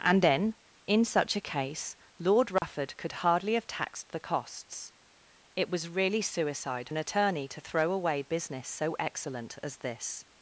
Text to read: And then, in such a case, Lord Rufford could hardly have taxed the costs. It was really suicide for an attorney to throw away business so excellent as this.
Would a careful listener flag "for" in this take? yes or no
yes